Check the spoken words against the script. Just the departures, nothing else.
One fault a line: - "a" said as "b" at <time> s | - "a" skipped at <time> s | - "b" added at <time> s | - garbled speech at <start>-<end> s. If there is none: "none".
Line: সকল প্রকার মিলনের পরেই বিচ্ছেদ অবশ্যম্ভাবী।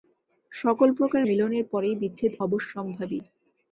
none